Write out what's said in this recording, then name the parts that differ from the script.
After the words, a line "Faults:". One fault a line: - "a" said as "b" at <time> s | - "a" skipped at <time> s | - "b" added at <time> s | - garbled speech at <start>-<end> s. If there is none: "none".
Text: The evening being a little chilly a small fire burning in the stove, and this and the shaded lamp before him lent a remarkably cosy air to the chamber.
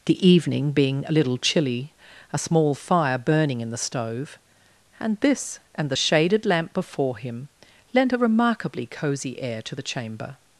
The evening being a little chilly a small fire burning in the stove, and this and the shaded lamp before him lent a remarkably cosy air to the chamber.
Faults:
none